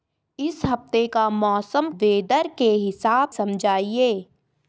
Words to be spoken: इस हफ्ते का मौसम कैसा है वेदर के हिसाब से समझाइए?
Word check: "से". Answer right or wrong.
wrong